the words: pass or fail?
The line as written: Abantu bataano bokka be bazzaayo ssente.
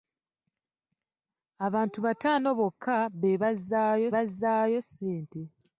fail